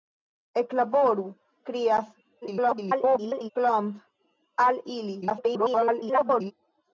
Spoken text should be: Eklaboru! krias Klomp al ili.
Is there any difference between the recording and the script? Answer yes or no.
yes